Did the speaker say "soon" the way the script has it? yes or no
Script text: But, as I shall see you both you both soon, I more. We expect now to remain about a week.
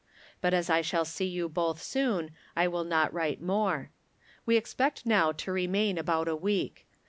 no